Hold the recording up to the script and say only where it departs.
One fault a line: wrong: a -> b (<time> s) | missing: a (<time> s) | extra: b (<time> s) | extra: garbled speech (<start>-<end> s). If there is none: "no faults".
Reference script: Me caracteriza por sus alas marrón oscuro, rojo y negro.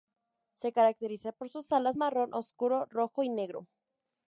wrong: Me -> Se (0.6 s)